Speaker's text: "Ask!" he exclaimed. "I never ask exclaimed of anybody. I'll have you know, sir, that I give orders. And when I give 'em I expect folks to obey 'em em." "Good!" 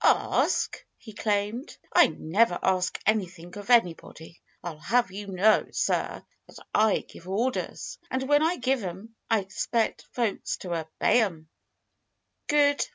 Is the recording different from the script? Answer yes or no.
yes